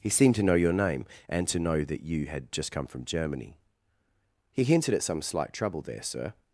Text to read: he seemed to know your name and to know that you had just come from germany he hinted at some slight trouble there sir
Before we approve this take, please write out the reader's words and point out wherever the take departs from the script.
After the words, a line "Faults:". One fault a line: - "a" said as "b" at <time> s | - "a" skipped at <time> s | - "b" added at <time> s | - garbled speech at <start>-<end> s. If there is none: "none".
he seemed to know your name and to know that you had just come from germany he hinted at some slight trouble there sir
Faults:
none